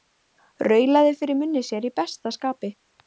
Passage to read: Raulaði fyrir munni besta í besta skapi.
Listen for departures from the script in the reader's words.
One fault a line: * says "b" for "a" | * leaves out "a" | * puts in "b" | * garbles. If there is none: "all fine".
* says "sér" for "besta"